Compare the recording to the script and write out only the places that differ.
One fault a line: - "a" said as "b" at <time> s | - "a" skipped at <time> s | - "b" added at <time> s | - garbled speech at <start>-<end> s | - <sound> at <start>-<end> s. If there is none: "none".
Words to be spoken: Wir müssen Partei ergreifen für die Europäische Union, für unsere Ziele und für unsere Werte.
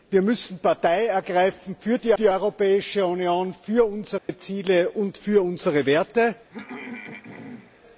- "die" added at 2.1 s
- dropout at 4.2-4.3 s
- throat clearing at 6.5-7.8 s